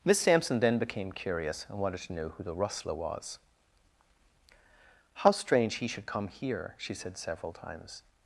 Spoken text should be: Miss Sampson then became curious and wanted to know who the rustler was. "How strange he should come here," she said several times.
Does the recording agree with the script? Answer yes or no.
yes